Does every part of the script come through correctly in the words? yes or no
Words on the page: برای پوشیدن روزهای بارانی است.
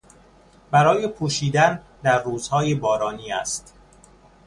no